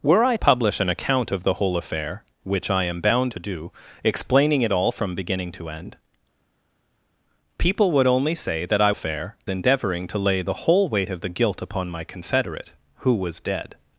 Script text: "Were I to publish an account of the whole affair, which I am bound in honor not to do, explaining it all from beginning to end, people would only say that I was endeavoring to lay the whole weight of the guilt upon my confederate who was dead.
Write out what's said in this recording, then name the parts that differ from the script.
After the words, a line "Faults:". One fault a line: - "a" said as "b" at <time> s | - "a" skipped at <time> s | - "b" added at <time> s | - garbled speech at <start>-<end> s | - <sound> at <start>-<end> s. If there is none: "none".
"Were I publish an account of the whole affair, which I am bound to do, explaining it all from beginning to end, people would only say that I affair endeavoring to lay the whole weight of the guilt upon my confederate who was dead.
Faults:
- "to" skipped at 0.3 s
- "in honor not" skipped at 3.3 s
- "was" said as "affair" at 8.9 s